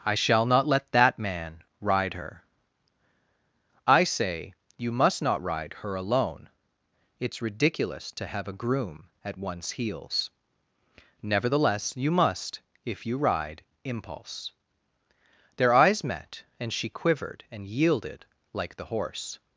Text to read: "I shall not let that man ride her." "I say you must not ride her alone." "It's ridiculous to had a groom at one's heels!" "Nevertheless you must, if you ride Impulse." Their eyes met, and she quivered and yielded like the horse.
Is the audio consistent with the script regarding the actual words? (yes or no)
no